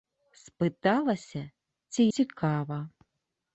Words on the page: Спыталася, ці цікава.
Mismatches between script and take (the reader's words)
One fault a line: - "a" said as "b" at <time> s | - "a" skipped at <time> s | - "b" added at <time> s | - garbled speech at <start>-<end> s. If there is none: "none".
none